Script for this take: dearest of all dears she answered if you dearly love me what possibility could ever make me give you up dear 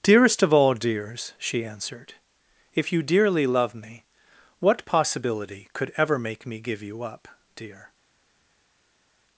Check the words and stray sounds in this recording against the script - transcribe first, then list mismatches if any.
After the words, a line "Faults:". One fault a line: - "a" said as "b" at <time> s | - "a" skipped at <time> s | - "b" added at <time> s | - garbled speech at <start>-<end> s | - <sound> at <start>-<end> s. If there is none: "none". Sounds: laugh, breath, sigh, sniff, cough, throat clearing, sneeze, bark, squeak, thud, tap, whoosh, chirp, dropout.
dearest of all dears she answered if you dearly love me what possibility could ever make me give you up dear
Faults:
none